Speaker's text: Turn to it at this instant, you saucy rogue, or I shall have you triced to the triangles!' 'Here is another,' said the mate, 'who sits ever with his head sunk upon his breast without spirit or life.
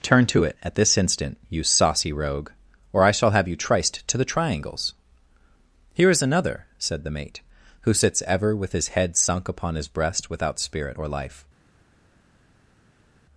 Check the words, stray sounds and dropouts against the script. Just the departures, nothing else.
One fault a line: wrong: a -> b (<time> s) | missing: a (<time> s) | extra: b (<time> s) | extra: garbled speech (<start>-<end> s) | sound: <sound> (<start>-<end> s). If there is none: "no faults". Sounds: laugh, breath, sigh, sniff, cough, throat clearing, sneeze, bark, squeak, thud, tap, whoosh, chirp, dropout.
no faults